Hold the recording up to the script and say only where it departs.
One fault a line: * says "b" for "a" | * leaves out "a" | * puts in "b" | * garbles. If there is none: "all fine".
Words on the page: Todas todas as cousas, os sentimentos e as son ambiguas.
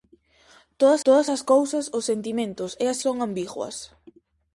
all fine